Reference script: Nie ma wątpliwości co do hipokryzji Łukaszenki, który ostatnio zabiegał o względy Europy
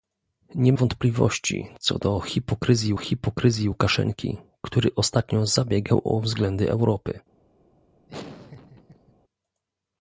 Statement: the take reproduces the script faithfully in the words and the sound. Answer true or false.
false